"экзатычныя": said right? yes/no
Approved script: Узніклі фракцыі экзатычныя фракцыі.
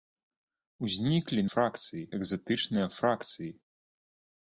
yes